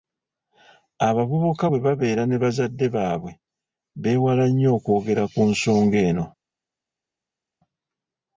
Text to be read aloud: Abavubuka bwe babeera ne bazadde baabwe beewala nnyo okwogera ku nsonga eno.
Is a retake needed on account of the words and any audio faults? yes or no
no